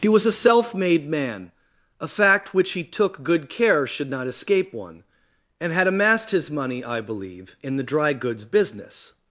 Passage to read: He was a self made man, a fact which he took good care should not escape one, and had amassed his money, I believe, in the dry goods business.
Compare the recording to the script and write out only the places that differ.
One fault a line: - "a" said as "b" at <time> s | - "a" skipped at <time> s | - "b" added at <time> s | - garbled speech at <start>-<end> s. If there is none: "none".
none